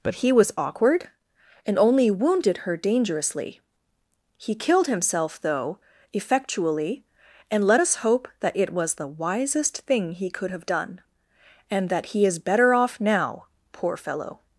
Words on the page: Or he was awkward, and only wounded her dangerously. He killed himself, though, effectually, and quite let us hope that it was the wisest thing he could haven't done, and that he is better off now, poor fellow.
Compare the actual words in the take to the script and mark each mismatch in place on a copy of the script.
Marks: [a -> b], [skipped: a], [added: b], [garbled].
[Or -> But] he was awkward, and only wounded her dangerously. He killed himself, though, effectually, and [skipped: quite] let us hope that it was the wisest thing he could [haven't -> have] done, and that he is better off now, poor fellow.